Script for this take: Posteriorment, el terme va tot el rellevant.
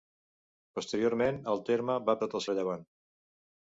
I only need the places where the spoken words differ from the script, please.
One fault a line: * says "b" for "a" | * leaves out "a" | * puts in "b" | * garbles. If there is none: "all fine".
all fine